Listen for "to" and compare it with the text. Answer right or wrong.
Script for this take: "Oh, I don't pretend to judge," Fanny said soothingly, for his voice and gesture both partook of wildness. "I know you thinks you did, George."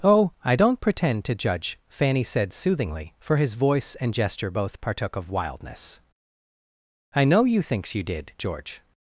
right